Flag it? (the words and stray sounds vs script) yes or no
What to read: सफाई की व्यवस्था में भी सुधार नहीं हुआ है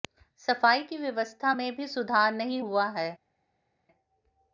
no